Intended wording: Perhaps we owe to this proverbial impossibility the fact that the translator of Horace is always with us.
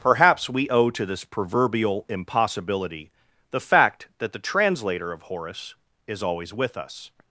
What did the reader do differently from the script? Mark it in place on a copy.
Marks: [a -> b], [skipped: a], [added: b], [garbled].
Perhaps we owe to this proverbial impossibility the fact that the translator of Horace is always with us.